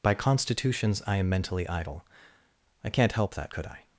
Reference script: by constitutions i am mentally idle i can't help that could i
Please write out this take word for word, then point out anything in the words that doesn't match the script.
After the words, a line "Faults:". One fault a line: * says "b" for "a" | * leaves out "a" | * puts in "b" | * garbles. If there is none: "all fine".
by constitutions i am mentally idle i can't help that could i
Faults:
all fine